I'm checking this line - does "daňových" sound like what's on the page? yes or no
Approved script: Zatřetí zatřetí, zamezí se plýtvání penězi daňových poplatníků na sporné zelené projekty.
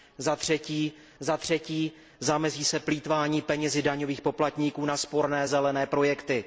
yes